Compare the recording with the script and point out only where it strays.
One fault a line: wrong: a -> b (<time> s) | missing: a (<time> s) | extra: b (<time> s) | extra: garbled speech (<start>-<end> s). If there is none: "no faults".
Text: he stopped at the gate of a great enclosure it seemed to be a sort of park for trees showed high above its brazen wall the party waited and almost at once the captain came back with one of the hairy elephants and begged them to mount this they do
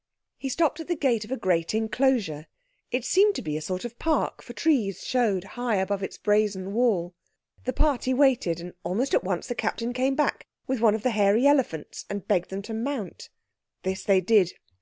wrong: do -> did (14.2 s)